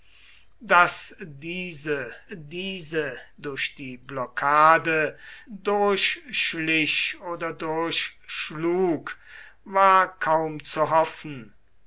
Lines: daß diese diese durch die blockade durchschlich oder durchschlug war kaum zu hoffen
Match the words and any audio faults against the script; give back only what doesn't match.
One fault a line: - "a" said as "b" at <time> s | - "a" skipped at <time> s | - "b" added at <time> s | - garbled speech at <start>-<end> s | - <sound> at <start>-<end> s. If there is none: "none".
none